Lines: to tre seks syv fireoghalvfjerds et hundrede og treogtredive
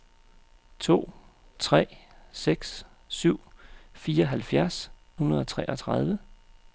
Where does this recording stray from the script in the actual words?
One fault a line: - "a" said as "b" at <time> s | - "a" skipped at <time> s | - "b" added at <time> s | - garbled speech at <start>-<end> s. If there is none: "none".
- "et" skipped at 4.9 s